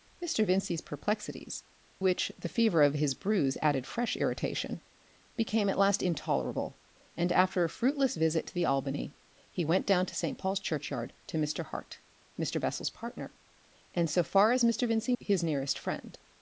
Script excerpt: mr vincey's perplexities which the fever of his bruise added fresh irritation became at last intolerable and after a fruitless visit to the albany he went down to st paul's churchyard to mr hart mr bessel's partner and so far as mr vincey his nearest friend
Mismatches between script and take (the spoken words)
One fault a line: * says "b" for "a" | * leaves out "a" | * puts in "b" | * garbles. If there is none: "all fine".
all fine